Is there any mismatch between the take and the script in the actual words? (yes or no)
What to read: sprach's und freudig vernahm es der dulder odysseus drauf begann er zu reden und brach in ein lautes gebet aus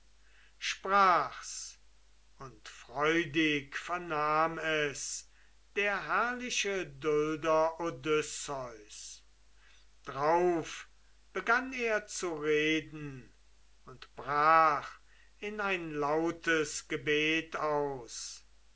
yes